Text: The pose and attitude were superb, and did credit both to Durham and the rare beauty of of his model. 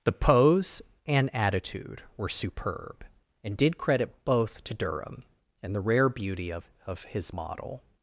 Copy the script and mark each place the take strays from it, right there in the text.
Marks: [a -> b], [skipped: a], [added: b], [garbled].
The pose and attitude were superb, and did credit both to Durham and the rare beauty of of his model.